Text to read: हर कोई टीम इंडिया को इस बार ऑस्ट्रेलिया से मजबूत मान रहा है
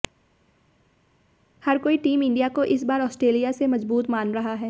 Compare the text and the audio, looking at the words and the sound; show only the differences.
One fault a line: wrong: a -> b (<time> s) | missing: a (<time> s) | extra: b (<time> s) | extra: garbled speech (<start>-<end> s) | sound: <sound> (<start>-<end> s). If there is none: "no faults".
no faults